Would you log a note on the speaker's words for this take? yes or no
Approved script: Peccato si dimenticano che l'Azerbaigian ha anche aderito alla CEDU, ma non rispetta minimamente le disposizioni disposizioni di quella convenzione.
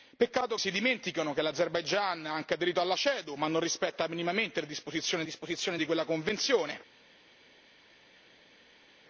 no